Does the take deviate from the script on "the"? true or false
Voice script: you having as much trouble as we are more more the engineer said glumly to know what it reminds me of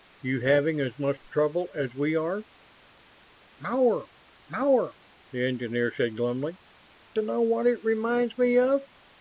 false